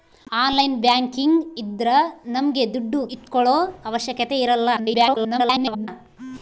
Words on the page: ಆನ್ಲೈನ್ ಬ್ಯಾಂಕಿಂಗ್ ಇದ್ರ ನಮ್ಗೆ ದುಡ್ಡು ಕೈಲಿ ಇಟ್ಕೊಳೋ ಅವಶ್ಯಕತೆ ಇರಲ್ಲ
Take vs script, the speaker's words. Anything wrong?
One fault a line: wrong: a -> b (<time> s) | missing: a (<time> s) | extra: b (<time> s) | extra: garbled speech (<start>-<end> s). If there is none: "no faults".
missing: ಕೈಲಿ (3.0 s)
extra: garbled speech (4.8-5.9 s)